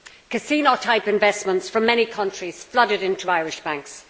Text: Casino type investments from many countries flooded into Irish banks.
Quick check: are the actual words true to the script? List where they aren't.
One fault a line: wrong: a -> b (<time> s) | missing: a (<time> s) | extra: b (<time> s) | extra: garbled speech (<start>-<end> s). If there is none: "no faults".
no faults